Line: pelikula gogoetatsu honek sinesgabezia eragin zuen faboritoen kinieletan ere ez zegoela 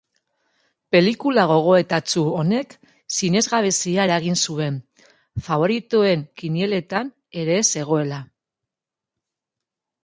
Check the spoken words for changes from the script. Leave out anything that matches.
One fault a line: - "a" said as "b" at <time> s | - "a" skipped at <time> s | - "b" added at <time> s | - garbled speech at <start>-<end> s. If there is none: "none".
none